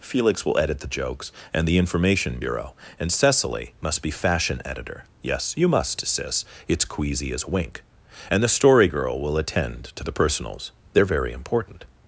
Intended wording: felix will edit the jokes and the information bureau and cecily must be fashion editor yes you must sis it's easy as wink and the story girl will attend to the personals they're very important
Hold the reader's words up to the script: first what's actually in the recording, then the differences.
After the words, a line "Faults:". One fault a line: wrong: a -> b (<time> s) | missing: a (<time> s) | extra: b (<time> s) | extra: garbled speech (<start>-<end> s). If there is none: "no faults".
felix will edit the jokes and the information bureau and cecily must be fashion editor yes you must sis it's queasy as wink and the story girl will attend to the personals they're very important
Faults:
wrong: easy -> queasy (6.8 s)